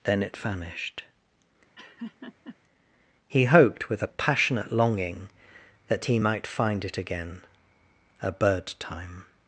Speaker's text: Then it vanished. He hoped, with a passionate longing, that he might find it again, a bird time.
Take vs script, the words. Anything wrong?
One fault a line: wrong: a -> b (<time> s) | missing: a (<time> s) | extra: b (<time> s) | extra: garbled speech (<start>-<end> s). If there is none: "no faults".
no faults